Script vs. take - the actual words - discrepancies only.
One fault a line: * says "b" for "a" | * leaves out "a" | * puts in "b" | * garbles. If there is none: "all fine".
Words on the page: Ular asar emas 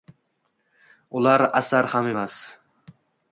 * puts in "ham"